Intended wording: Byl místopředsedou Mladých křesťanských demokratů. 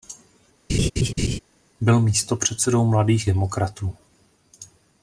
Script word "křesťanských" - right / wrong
wrong